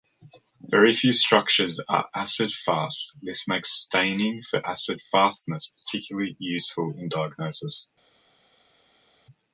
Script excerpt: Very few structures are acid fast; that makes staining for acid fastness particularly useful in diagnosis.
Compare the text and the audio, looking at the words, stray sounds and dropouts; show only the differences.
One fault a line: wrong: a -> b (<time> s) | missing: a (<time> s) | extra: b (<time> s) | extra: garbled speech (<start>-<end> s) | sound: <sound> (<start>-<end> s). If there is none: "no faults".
wrong: that -> this (3.2 s)